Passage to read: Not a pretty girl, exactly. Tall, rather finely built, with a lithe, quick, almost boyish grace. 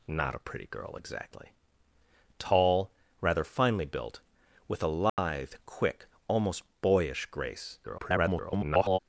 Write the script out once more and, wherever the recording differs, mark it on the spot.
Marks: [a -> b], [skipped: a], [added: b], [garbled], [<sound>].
Not a pretty girl, exactly. Tall, rather finely built, with a lithe, [dropout] quick, almost boyish grace. [garbled]